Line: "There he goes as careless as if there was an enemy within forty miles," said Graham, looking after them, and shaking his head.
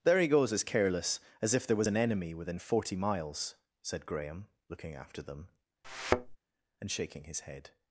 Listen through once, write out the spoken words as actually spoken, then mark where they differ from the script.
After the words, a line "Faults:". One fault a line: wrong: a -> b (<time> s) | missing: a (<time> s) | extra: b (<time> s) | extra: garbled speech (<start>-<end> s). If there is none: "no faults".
"There he goes as careless as if there was an enemy within forty miles," said Graham, looking after them, and shaking his head.
Faults:
no faults